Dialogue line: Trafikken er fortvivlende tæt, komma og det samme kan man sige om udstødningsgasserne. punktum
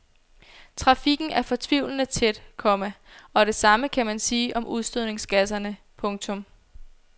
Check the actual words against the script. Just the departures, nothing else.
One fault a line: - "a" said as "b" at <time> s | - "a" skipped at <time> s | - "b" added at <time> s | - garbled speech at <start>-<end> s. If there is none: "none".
none